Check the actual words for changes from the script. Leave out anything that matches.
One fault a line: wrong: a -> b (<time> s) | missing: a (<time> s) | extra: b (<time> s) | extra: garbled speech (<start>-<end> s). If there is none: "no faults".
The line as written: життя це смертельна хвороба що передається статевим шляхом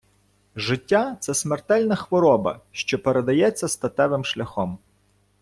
no faults